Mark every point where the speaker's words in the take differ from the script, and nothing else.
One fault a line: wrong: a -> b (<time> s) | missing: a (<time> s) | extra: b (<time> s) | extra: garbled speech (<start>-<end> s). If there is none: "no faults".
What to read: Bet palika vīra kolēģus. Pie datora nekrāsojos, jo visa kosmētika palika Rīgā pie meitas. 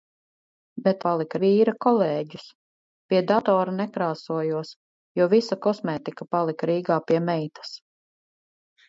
no faults